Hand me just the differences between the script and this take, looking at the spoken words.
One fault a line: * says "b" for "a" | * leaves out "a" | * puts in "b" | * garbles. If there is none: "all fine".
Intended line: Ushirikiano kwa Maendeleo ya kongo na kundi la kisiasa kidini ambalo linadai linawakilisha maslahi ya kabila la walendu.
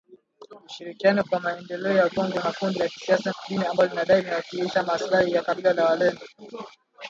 all fine